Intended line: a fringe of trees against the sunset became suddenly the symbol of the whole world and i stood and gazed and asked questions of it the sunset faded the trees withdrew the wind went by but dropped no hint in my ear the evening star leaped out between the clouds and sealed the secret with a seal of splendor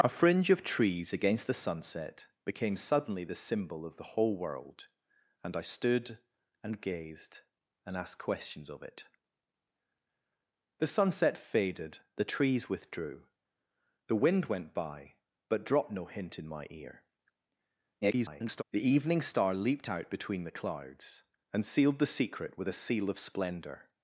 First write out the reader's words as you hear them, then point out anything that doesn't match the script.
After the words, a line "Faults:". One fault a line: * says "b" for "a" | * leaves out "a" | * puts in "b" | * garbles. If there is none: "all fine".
a fringe of trees against the sunset became suddenly the symbol of the whole world and i stood and gazed and asked questions of it the sunset faded the trees withdrew the wind went by but dropped no hint in my ear [garbled] the evening star leaped out between the clouds and sealed the secret with a seal of splendor
Faults:
* garbles